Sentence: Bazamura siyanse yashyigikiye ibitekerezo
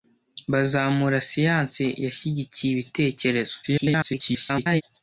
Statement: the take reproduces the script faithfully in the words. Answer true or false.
false